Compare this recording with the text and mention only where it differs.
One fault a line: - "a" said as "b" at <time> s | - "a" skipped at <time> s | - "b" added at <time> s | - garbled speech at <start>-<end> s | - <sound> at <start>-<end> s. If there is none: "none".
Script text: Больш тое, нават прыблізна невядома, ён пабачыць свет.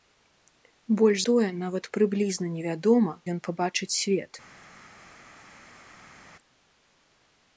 none